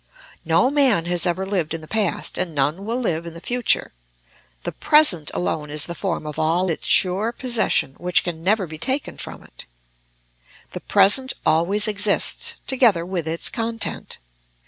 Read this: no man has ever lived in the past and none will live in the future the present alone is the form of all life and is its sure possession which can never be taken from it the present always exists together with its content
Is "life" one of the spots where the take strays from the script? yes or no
yes